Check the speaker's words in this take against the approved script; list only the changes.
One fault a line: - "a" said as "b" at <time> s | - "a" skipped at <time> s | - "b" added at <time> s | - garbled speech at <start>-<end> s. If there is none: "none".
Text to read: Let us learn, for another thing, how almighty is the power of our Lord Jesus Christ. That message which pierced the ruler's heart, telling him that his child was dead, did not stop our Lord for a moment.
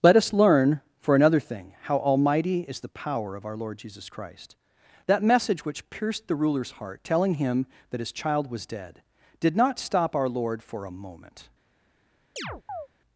none